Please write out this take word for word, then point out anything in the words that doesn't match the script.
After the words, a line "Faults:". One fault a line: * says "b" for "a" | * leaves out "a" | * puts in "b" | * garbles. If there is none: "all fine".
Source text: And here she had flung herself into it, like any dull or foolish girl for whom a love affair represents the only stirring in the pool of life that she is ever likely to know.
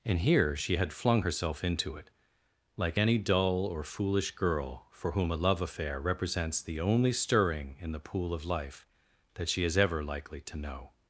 And here she had flung herself into it, like any dull or foolish girl for whom a love affair represents the only stirring in the pool of life that she is ever likely to know.
Faults:
all fine